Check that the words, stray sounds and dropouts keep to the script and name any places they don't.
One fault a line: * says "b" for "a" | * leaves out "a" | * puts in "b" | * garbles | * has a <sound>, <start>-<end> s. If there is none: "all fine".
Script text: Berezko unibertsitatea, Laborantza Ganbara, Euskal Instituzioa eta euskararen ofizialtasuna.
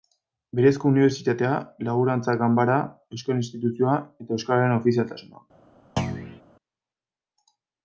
* has a thud, 6.0-6.4 s